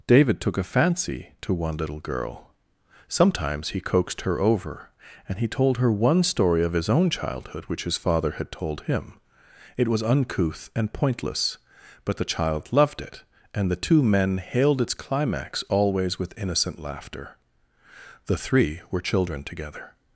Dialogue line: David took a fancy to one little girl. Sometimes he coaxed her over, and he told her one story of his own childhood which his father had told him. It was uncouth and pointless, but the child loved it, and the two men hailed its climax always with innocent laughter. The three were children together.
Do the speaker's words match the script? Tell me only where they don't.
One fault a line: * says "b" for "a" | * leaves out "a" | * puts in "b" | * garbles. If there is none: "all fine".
all fine